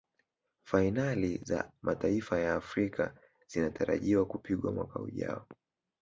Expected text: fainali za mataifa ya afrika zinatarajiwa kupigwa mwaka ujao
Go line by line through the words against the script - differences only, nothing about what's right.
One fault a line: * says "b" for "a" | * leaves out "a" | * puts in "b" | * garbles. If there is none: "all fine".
all fine